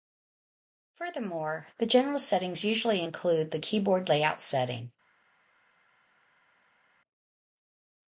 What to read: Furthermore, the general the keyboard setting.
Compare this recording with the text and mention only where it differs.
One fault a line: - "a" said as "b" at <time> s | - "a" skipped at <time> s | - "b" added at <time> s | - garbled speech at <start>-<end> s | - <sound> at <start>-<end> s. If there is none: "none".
- "settings usually include" added at 2.2 s
- "layout" added at 4.1 s